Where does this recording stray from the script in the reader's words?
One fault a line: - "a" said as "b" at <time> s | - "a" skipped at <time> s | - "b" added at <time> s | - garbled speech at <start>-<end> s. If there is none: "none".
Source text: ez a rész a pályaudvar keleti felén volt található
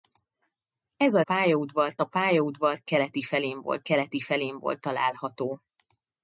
- "rész" said as "pályaudvar" at 1.2 s
- "keleti felén volt" added at 3.8 s